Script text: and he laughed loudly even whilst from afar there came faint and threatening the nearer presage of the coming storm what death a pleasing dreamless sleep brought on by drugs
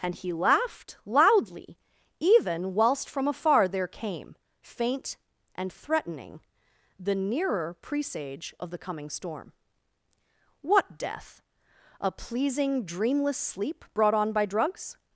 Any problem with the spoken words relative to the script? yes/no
no